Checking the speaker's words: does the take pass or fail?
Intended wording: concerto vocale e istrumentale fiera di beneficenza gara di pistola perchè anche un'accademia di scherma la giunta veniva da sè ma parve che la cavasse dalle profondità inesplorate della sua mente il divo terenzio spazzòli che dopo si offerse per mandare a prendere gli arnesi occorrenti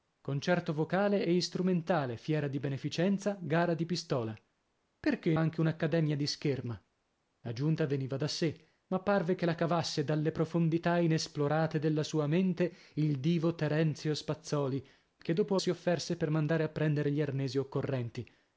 pass